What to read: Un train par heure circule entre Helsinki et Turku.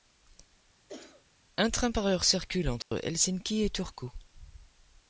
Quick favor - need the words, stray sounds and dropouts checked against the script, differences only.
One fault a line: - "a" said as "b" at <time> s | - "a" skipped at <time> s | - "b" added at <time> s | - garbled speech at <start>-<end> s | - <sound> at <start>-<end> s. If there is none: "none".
- cough at 0.9-1.3 s
- dropout at 2.8-2.9 s